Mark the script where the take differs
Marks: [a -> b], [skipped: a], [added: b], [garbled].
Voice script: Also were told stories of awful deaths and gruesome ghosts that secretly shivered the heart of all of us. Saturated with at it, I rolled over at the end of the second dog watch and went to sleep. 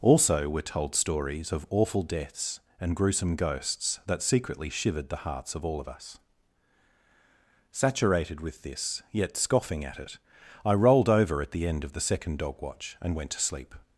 Also were told stories of awful deaths and gruesome ghosts that secretly shivered the [heart -> hearts] of all of us. Saturated with [added: this yet scoffing] at it, I rolled over at the end of the second dog watch and went to sleep.